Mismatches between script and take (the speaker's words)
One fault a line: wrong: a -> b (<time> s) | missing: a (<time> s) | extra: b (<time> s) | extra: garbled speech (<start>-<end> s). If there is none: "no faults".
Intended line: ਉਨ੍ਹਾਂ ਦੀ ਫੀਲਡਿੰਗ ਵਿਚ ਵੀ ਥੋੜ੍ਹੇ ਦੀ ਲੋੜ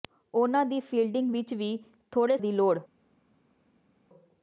no faults